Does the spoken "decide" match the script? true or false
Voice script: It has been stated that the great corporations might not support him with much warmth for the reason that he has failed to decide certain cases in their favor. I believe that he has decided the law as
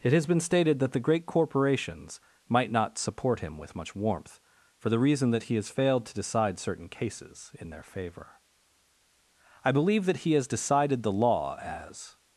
true